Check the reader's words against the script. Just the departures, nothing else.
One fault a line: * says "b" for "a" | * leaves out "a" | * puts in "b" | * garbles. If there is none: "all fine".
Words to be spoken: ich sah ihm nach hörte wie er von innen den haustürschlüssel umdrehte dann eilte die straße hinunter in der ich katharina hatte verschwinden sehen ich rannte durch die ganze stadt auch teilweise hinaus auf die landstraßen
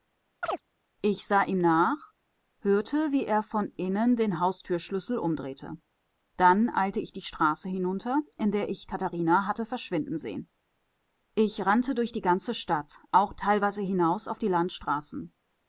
* puts in "ich"